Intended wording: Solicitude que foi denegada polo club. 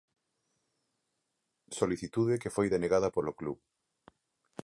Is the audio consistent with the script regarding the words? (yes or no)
yes